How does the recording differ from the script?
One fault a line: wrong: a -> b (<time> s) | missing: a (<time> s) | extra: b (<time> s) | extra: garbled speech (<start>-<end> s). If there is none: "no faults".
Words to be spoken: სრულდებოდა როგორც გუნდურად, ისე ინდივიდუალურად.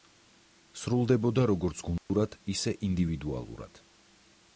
no faults